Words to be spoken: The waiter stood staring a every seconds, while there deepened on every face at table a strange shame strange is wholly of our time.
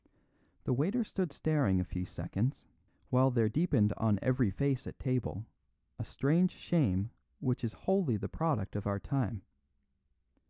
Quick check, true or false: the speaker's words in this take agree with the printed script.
false